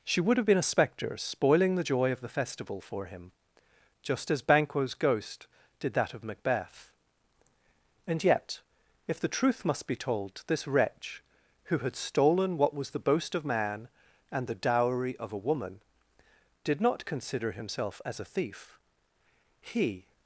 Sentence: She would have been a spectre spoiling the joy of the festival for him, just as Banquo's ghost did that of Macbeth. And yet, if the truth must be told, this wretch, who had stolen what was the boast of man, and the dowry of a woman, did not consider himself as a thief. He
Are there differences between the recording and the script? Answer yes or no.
no